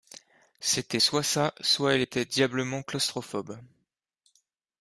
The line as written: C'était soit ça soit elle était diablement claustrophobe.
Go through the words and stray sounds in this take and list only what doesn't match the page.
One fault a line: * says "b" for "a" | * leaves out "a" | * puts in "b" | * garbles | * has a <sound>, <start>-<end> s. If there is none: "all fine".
all fine